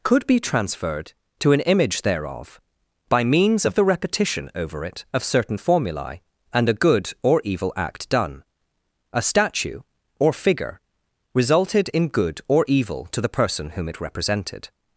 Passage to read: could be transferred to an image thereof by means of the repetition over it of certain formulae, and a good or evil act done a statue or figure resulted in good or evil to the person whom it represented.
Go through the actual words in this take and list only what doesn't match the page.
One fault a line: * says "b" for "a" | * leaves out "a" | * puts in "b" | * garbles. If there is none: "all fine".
all fine